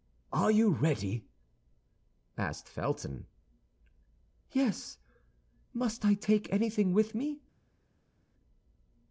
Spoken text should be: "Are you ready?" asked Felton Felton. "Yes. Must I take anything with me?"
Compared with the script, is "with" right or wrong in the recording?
right